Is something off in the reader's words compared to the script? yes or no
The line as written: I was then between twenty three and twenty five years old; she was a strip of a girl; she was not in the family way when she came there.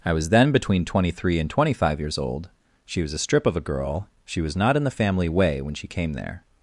no